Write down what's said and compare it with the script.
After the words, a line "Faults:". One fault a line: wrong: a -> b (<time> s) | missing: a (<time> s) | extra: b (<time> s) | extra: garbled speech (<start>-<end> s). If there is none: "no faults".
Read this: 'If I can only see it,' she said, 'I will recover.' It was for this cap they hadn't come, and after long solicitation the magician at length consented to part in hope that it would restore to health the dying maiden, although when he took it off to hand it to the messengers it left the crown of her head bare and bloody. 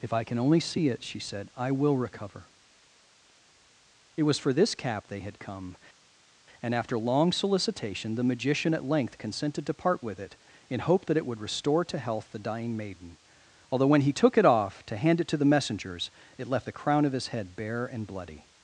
'If I can only see it,' she said, 'I will recover.' It was for this cap they had come, and after long solicitation the magician at length consented to part with it, in hope that it would restore to health the dying maiden, although when he took it off to hand it to the messengers it left the crown of his head bare and bloody.
Faults:
wrong: hadn't -> had (5.2 s)
extra: with it (10.0 s)
wrong: her -> his (17.1 s)